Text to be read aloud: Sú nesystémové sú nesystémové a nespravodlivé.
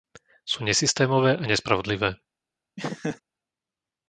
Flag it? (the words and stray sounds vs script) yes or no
yes